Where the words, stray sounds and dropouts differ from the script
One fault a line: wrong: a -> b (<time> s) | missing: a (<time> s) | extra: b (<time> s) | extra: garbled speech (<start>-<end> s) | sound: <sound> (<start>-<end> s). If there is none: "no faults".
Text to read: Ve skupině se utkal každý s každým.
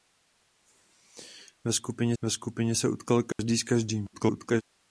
extra: ve skupině (2.2 s)
sound: dropout (3.3-3.4 s)
extra: garbled speech (4.1-4.6 s)